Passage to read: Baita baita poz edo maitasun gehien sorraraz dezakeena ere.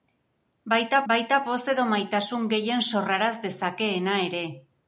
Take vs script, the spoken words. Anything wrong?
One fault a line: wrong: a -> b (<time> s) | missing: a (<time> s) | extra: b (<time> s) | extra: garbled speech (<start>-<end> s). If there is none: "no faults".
no faults